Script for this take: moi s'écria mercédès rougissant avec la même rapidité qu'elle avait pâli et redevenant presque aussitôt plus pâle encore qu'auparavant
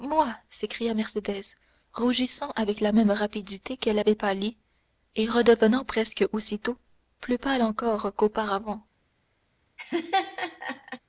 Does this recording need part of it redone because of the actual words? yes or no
no